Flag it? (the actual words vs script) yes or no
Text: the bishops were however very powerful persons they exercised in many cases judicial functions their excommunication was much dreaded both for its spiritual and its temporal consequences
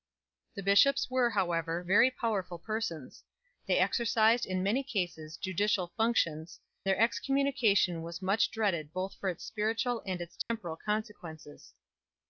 no